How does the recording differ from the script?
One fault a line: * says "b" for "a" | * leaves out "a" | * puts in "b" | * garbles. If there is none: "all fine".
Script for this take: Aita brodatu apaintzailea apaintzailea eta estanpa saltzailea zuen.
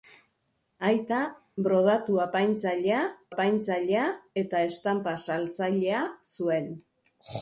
all fine